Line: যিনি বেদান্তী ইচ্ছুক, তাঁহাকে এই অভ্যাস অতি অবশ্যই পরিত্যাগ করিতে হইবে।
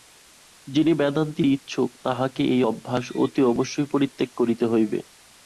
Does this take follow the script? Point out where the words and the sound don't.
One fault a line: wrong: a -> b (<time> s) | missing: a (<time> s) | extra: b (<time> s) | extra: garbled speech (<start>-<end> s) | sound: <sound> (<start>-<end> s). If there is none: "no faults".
no faults